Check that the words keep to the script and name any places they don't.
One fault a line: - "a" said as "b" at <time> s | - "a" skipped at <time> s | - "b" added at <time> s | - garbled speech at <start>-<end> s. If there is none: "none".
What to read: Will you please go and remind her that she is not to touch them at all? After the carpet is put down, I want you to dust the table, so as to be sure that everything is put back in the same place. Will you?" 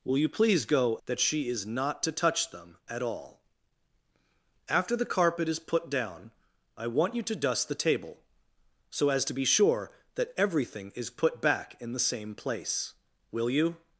- "and remind her" skipped at 1.0 s